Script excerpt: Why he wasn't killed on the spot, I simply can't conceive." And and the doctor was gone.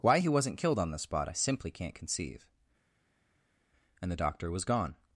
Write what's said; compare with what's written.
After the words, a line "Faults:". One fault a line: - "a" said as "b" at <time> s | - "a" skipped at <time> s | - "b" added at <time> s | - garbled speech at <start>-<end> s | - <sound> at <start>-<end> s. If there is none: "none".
Why he wasn't killed on the spot, I simply can't conceive." And the doctor was gone.
Faults:
- "and" skipped at 4.1 s